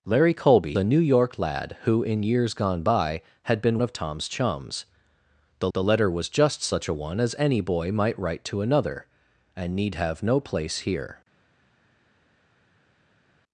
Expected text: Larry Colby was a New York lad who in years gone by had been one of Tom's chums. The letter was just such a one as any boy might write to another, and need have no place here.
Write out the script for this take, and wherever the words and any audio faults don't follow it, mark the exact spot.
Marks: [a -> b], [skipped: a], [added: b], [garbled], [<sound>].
Larry Colby [skipped: was] a New York lad who in years gone by had been [skipped: one] of Tom's chums. The [added: the] letter was just such a one as any boy might write to another, and need have no place here.